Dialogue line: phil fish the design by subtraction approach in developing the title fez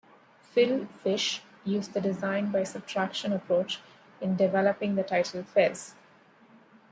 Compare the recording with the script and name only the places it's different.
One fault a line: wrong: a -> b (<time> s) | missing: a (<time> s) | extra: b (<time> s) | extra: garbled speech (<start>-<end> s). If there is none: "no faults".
extra: used (1.7 s)